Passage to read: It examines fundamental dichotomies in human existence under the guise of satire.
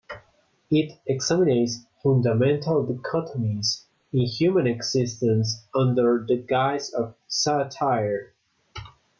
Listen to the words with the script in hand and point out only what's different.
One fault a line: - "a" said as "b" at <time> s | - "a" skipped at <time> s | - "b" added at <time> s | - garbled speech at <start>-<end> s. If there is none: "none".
none